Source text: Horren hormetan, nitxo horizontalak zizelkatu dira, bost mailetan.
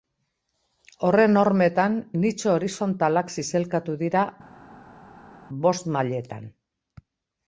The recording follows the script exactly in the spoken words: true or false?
true